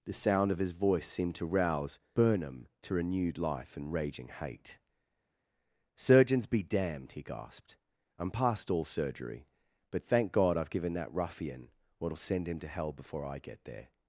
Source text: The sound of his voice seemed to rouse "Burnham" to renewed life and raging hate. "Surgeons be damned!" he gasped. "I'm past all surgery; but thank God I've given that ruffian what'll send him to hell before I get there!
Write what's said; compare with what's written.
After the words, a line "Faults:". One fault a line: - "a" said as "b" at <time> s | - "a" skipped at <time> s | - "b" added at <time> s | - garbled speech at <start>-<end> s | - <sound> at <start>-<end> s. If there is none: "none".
The sound of his voice seemed to rouse "Burnham" to renewed life and raging hate. "Surgeons be damned!" he gasped. "I'm past all surgery; but thank God I've given that ruffian what'll send him to hell before I get there!
Faults:
none